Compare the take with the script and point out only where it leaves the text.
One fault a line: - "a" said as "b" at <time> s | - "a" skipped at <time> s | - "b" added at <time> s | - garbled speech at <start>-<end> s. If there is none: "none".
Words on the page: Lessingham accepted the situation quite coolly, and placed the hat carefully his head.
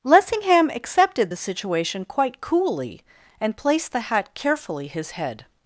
none